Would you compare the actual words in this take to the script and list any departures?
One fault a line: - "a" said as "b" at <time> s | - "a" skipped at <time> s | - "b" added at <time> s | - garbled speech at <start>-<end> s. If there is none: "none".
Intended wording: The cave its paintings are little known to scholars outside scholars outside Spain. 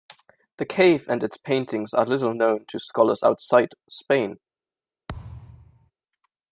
- "and" added at 1.1 s
- "scholars outside" skipped at 3.7 s